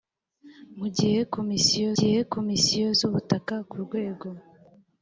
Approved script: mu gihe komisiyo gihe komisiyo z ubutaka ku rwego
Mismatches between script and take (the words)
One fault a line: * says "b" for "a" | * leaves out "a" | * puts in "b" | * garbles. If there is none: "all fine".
all fine